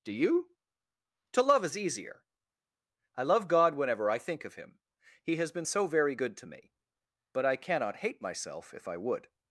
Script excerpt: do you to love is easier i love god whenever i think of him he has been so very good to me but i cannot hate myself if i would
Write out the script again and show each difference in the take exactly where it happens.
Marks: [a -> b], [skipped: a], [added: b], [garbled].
do you to love is easier i love god whenever i think of him he has been so very good to me but i cannot hate myself if i would